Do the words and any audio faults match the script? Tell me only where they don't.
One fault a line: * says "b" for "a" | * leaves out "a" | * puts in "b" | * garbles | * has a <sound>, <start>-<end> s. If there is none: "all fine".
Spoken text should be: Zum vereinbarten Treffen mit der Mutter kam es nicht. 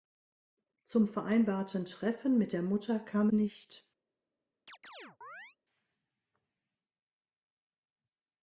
* leaves out "es"
* has a chirp, 4.7-5.6 s